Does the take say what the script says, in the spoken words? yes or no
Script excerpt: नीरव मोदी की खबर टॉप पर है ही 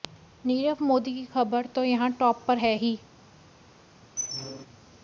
no